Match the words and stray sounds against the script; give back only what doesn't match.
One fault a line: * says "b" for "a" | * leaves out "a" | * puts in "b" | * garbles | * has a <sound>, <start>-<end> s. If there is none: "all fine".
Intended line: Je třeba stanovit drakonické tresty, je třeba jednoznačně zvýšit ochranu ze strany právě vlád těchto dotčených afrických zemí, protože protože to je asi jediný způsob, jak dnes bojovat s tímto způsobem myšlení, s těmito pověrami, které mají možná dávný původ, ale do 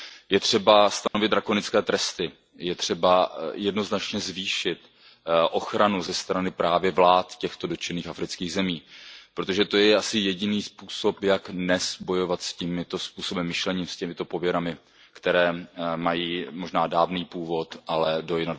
* has a dropout, 1.1-1.1 s
* leaves out "protože"